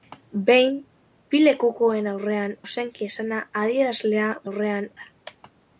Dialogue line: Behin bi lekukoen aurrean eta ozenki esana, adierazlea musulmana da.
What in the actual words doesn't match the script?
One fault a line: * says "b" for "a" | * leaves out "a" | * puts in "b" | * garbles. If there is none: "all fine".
* leaves out "eta"
* says "aurrean" for "musulmana"